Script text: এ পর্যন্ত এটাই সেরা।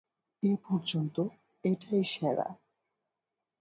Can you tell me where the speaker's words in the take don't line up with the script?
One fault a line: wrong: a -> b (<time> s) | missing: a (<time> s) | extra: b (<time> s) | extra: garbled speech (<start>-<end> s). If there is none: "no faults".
no faults